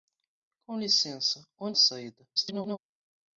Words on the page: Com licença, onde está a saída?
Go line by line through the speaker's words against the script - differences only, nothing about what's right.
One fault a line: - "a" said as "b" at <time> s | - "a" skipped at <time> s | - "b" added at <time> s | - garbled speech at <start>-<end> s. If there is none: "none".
- "está" skipped at 1.8 s
- garbled speech at 2.4-2.8 s